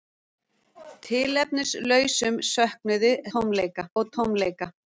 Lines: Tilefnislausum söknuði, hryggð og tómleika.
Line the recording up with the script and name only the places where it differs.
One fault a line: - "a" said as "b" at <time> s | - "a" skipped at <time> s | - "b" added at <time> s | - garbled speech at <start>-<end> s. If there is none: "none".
- "hryggð" said as "tómleika" at 3.4 s